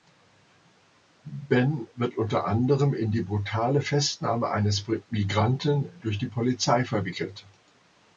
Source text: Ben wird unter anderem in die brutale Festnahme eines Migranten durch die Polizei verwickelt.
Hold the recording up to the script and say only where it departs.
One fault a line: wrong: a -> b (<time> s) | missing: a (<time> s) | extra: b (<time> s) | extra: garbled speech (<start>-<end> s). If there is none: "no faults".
no faults